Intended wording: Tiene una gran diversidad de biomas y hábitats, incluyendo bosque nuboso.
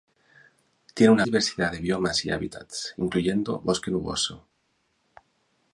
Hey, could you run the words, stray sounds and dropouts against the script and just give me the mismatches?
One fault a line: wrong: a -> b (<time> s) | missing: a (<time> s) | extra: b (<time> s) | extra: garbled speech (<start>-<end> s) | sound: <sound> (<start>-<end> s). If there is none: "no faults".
missing: gran (1.2 s)